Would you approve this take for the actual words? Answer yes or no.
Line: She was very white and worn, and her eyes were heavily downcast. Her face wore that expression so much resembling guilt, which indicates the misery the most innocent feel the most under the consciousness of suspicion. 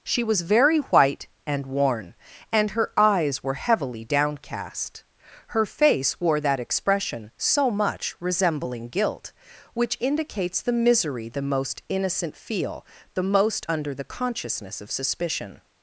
yes